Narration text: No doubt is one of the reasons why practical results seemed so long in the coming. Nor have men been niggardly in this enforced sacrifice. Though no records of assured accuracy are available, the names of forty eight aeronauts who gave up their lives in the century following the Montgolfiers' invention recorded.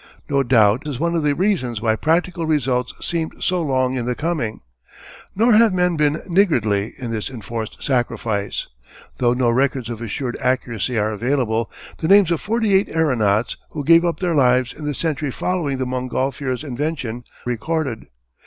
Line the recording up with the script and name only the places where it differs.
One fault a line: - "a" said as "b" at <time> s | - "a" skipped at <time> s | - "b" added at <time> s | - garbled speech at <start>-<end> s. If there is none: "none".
none